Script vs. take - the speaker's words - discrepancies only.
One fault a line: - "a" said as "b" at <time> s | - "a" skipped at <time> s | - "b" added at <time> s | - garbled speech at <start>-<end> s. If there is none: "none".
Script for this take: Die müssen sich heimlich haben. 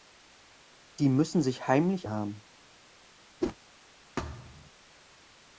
none